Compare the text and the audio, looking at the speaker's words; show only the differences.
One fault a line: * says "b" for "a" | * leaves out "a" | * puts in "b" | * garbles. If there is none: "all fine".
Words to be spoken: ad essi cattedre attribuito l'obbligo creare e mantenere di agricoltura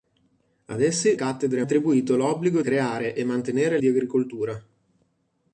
all fine